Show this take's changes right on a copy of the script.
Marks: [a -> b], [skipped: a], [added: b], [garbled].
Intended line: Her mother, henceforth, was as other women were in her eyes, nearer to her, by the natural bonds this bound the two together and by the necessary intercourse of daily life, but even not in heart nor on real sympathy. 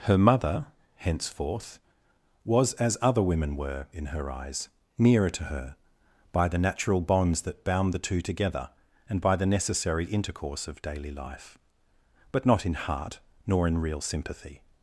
Her mother, henceforth, was as other women were in her eyes, nearer to her, by the natural bonds [this -> that] bound the two together and by the necessary intercourse of daily life, but [skipped: even] not in heart nor [on -> in] real sympathy.